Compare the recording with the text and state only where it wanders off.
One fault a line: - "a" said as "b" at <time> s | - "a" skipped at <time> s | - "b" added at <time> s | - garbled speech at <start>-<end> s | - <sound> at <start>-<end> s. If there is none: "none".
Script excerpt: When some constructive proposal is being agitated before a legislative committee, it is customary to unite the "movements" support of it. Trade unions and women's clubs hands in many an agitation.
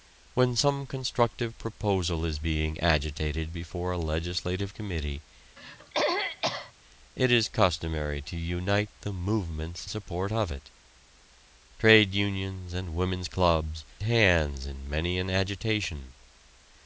- throat clearing at 5.6-6.7 s